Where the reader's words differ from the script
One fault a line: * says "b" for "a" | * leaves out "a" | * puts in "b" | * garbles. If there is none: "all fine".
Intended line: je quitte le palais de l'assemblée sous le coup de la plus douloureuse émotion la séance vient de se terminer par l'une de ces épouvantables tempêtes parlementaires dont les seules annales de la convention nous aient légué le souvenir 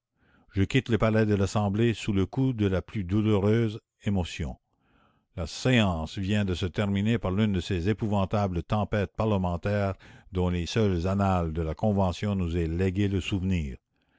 all fine